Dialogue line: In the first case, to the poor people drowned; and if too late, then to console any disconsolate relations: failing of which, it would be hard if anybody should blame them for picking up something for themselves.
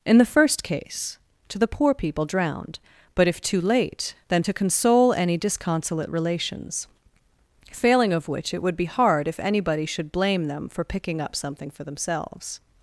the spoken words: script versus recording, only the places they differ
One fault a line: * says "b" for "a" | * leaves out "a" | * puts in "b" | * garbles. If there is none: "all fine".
* says "but" for "and"